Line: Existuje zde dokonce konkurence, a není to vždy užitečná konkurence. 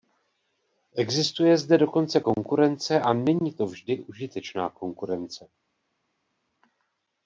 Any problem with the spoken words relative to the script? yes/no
no